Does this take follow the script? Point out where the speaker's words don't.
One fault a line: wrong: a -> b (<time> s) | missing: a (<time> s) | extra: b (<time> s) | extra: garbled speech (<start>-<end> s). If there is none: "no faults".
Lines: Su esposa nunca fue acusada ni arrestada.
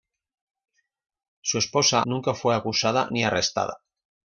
no faults